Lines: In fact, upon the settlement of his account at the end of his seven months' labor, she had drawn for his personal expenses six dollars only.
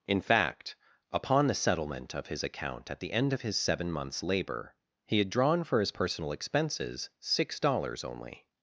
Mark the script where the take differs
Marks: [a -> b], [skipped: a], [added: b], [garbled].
In fact, upon the settlement of his account at the end of his seven months' labor, [she -> he] had drawn for his personal expenses six dollars only.